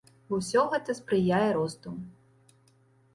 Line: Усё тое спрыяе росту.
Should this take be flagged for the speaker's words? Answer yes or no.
yes